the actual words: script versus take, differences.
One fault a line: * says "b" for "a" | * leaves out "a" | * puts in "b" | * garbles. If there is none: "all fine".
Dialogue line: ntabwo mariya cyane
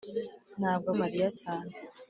all fine